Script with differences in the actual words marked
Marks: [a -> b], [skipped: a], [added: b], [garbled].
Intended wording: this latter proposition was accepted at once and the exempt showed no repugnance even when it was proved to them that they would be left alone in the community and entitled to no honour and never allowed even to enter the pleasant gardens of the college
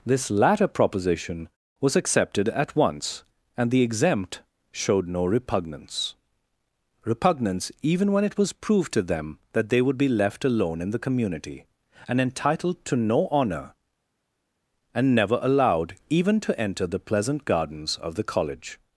this latter proposition was accepted at once and the exempt showed no repugnance [added: repugnance] even when it was proved to them that they would be left alone in the community and entitled to no honour and never allowed even to enter the pleasant gardens of the college